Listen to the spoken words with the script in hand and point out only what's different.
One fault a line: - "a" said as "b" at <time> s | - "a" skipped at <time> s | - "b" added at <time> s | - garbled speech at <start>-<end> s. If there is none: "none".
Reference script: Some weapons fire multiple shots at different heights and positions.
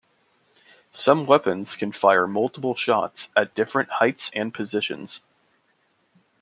- "can" added at 1.8 s